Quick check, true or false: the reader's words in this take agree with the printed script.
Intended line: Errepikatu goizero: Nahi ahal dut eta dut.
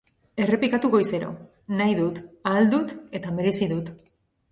false